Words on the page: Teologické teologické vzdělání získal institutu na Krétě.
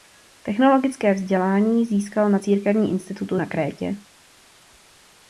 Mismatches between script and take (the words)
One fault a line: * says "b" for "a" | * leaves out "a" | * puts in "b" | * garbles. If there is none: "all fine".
* leaves out "teologické"
* puts in "na Církevním"